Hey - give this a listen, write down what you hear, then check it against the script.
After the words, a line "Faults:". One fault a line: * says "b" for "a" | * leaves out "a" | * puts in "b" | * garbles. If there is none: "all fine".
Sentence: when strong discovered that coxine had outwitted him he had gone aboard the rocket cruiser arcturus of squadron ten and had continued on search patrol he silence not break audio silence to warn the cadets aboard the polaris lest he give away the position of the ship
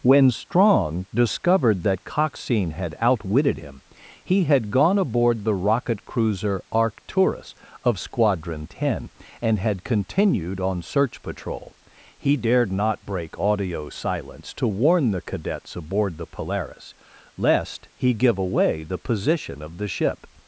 when strong discovered that coxine had outwitted him he had gone aboard the rocket cruiser arcturus of squadron ten and had continued on search patrol he dared not break audio silence to warn the cadets aboard the polaris lest he give away the position of the ship
Faults:
* says "dared" for "silence"